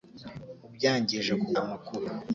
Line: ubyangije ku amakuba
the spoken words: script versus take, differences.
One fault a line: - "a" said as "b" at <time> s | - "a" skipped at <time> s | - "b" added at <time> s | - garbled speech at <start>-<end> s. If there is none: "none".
none